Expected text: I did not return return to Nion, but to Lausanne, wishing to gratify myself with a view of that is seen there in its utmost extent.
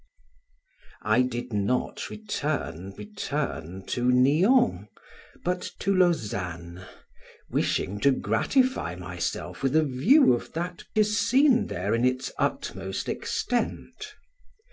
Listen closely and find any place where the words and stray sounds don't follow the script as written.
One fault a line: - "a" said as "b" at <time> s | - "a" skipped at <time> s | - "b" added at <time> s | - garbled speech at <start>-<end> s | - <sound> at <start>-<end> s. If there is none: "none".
none